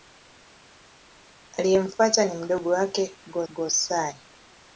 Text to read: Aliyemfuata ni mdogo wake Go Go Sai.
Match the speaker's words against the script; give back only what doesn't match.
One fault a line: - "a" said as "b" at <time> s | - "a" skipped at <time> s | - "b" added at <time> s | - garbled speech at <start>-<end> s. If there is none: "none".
none